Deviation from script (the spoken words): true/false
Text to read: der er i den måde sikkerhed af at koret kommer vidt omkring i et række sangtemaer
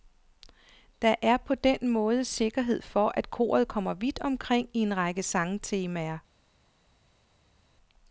true